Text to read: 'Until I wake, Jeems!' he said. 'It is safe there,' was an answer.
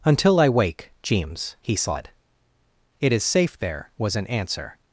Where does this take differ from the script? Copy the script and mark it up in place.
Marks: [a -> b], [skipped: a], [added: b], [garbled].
'Until I wake, Jeems!' he said. 'It is safe there,' was an answer.